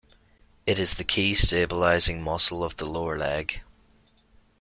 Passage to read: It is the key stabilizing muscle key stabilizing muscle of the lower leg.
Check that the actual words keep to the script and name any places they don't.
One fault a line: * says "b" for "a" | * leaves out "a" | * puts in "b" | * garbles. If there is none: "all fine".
* leaves out "key stabilizing muscle"